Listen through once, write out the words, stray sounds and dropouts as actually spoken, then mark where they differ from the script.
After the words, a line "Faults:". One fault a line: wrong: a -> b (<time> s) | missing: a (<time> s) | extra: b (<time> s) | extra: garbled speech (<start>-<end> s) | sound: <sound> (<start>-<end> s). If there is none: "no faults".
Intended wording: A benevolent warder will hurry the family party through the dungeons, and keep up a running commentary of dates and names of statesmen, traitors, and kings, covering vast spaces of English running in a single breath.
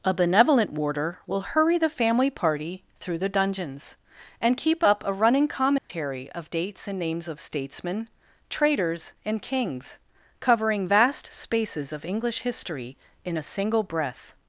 A benevolent warder will hurry the family party through the dungeons, and keep up a running commentary of dates and names of statesmen, traitors, and kings, covering vast spaces of English history in a single breath.
Faults:
sound: dropout (5.8-5.9 s)
wrong: running -> history (12.4 s)